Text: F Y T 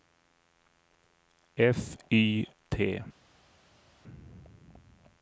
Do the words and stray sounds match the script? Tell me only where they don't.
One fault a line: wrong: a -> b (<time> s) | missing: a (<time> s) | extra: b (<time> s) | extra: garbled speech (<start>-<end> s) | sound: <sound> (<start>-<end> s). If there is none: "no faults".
no faults